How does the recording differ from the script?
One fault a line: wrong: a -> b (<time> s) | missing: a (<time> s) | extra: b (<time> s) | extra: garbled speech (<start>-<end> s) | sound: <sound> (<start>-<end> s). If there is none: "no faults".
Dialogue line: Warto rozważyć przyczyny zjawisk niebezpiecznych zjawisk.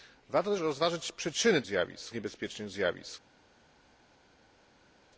no faults